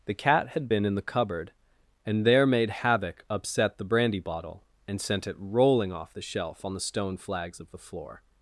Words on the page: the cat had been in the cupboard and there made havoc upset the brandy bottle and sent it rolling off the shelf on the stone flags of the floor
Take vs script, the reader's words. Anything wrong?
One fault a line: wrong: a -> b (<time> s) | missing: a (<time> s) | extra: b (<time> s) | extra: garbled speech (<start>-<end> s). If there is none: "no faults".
no faults